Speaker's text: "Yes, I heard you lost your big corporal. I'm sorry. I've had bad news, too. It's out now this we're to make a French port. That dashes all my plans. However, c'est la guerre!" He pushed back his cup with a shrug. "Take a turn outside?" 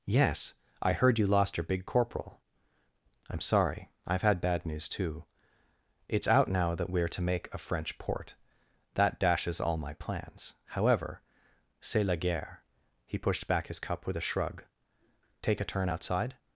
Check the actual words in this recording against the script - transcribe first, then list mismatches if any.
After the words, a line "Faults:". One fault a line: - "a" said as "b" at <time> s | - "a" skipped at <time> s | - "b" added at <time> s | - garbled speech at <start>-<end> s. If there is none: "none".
"Yes, I heard you lost your big corporal. I'm sorry. I've had bad news, too. It's out now that we're to make a French port. That dashes all my plans. However, c'est la guerre!" He pushed back his cup with a shrug. "Take a turn outside?"
Faults:
- "this" said as "that" at 6.8 s